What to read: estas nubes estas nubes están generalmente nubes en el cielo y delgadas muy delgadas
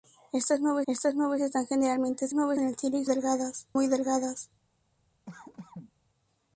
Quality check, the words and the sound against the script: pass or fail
fail